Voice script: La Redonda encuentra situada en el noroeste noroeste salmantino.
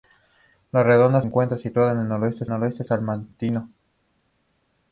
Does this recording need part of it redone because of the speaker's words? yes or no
no